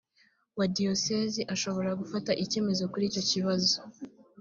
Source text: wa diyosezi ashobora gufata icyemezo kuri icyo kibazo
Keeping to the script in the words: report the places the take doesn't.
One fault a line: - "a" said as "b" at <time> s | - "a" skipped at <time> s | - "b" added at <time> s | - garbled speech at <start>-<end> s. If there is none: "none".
none